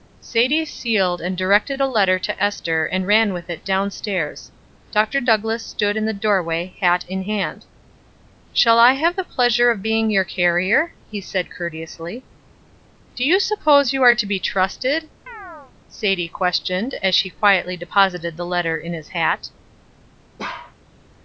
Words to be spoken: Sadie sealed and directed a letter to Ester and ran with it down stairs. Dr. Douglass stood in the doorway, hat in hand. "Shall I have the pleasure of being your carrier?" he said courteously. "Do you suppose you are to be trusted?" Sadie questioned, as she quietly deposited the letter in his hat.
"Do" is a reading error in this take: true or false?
false